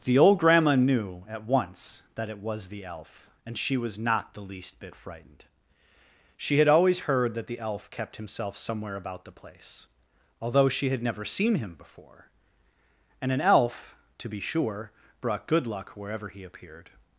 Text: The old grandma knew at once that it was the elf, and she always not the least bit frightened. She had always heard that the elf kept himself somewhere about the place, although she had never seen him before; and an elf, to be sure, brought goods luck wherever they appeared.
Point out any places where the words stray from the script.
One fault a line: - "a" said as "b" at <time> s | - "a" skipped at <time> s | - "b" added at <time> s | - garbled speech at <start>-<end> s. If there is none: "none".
- "always" said as "was" at 3.8 s
- "goods" said as "good" at 15.5 s
- "they" said as "he" at 16.3 s